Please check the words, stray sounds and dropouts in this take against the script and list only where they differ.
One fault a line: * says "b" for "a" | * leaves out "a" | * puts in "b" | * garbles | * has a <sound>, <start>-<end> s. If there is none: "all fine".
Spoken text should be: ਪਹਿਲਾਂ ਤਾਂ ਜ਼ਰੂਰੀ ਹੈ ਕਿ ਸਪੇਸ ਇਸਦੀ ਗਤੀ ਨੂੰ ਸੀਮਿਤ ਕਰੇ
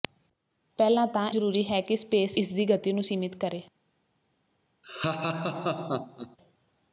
* has a laugh, 4.8-6.4 s